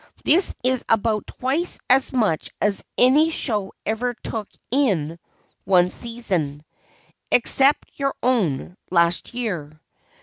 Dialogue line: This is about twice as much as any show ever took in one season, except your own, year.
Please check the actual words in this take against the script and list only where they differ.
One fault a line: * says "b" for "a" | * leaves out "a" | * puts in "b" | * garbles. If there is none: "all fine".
* puts in "last"